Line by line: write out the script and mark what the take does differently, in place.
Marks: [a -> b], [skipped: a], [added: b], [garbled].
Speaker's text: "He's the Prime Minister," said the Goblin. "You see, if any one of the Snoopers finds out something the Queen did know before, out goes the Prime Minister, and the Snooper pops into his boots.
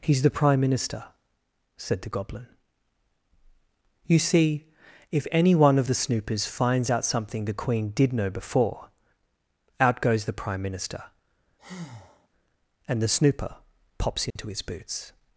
"He's the Prime Minister," said the Goblin. "You see, if any one of the Snoopers finds out something the Queen did know before, out goes the Prime Minister, and the Snooper pops into his boots.